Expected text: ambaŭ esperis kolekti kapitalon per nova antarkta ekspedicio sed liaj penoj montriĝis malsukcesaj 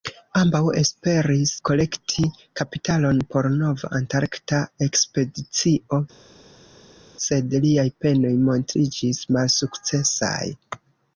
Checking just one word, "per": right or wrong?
wrong